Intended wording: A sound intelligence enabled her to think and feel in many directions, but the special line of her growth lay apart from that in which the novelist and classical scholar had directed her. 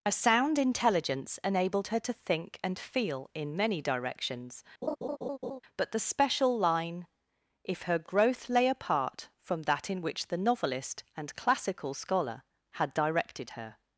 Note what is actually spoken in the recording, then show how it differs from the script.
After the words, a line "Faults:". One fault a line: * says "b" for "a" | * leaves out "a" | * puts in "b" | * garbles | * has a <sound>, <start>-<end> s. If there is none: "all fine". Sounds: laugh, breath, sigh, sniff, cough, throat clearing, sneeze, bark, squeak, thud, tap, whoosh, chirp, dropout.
A sound intelligence enabled her to think and feel in many directions, but the special line if her growth lay apart from that in which the novelist and classical scholar had directed her.
Faults:
* has a laugh, 4.8-5.6 s
* says "if" for "of"